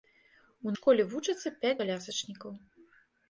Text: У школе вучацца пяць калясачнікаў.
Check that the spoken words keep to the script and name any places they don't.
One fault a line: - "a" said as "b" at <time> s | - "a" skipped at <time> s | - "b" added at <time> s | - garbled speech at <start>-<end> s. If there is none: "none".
none